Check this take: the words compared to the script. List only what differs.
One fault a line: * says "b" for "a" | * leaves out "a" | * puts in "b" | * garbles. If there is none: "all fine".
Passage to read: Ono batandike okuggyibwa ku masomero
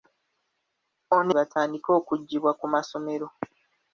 all fine